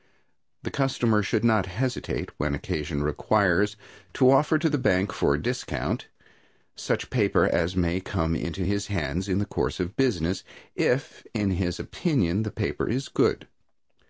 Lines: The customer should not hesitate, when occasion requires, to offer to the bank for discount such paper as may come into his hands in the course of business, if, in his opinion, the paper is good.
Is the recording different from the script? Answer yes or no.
no